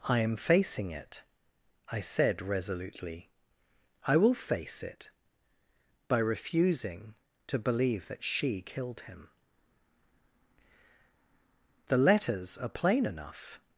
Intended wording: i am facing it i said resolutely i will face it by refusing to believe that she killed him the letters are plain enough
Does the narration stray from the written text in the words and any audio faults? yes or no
no